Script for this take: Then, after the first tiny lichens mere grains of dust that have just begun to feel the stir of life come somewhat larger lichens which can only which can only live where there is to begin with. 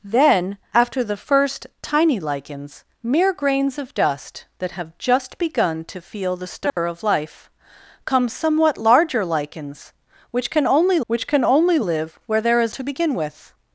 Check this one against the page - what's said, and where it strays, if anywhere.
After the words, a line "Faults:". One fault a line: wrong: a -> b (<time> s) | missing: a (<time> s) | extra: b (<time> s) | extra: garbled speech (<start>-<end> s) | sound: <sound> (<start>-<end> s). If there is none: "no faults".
Then, after the first tiny lichens mere grains of dust that have just begun to feel the stir of life come somewhat larger lichens which can only which can only live where there is to begin with.
Faults:
sound: dropout (6.7-6.8 s)